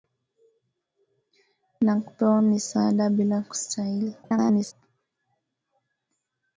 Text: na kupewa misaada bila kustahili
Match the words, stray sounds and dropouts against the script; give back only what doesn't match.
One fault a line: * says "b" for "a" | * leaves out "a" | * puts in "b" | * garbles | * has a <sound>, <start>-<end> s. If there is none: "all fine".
* garbles